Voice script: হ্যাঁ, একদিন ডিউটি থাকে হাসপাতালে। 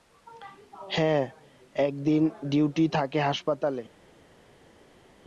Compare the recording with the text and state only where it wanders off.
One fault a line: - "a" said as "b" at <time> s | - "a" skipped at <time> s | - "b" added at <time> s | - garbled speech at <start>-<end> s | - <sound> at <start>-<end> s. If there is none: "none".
none